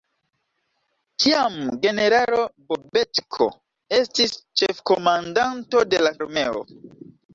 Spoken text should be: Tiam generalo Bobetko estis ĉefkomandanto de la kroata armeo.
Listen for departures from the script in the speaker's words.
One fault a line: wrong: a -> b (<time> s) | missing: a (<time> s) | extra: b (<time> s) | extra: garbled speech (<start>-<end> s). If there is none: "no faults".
missing: kroata (6.2 s)